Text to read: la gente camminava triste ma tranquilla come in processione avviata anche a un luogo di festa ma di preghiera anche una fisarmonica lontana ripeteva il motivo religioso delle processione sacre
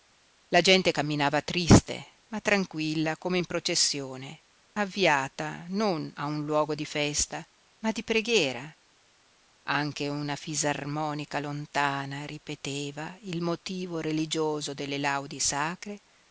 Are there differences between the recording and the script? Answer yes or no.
yes